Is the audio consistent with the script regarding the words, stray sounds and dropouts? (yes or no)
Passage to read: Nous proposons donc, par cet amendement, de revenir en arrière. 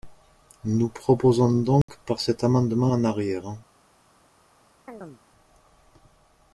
no